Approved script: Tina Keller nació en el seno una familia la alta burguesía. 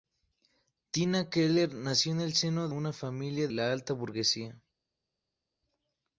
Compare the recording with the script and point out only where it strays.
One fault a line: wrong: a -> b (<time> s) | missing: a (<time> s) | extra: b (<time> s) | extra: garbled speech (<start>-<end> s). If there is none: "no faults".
no faults